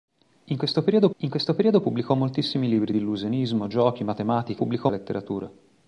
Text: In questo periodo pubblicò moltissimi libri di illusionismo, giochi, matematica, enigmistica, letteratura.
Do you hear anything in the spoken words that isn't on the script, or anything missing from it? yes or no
yes